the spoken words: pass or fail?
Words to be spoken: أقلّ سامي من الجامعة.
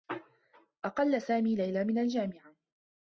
fail